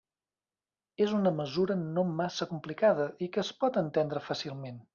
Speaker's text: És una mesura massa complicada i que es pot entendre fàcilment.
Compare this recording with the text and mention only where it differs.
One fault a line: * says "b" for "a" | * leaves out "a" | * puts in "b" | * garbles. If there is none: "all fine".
* puts in "no"